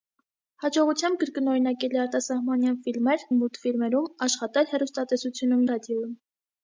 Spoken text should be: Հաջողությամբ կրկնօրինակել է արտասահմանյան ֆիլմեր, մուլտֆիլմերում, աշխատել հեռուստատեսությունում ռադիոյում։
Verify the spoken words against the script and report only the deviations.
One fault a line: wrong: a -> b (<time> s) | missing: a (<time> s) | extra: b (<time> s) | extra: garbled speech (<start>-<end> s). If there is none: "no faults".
no faults